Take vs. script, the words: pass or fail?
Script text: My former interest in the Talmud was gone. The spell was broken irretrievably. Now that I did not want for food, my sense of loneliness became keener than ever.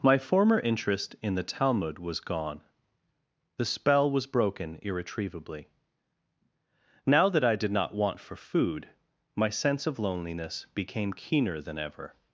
pass